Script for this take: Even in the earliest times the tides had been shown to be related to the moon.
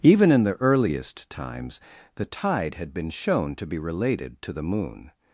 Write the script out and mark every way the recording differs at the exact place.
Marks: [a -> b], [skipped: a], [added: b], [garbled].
Even in the earliest times the [tides -> tide] had been shown to be related to the moon.